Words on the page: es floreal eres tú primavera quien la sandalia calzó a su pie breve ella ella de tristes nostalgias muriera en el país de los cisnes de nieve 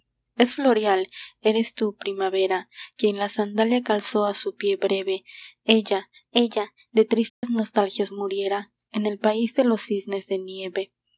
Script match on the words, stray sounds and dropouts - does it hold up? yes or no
no